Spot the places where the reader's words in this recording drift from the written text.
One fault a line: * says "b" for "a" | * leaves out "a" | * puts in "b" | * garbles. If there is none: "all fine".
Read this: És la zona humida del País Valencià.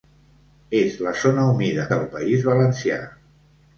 all fine